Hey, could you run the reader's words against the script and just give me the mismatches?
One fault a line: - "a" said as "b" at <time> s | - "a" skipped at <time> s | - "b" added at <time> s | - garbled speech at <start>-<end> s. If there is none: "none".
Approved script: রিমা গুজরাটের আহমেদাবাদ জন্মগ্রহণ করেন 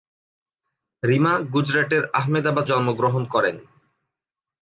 none